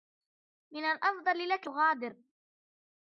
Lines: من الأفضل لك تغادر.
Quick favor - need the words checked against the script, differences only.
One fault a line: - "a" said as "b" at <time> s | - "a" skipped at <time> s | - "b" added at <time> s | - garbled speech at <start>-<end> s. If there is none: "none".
none